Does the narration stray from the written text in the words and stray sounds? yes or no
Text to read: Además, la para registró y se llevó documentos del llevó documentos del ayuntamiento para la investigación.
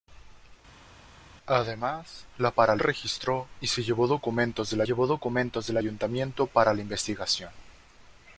no